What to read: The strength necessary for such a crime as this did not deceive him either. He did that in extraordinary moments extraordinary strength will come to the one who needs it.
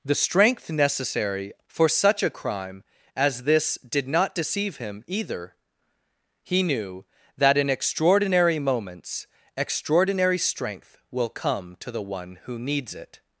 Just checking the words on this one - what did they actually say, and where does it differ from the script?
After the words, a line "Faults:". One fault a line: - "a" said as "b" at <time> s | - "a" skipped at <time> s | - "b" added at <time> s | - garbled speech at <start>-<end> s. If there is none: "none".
The strength necessary for such a crime as this did not deceive him either. He knew that in extraordinary moments extraordinary strength will come to the one who needs it.
Faults:
- "did" said as "knew" at 6.6 s